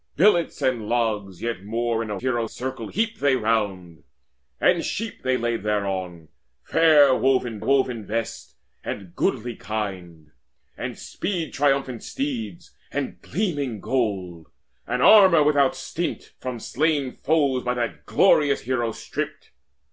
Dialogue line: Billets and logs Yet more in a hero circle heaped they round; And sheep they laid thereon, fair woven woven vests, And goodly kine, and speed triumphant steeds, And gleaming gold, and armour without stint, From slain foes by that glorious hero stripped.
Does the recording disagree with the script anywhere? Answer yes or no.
no